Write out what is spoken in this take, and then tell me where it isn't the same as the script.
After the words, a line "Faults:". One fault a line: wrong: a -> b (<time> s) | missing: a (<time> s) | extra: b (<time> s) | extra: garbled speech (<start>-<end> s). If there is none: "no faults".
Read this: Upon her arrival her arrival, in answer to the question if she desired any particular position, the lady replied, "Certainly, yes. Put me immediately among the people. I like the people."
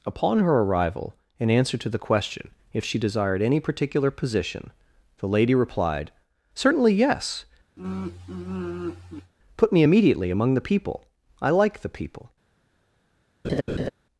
Upon her arrival, in answer to the question if she desired any particular position, the lady replied, "Certainly, yes. Put me immediately among the people. I like the people."
Faults:
missing: her arrival (1.1 s)